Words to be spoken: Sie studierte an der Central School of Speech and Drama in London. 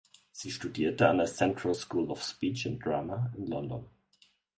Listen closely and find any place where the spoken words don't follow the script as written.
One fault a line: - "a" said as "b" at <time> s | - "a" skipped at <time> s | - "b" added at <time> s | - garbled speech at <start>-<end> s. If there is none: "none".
none